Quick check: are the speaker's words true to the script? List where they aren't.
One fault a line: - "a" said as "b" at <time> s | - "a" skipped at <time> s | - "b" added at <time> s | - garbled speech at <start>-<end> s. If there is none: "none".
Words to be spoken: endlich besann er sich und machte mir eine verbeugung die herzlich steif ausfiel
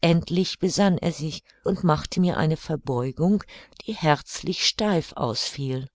none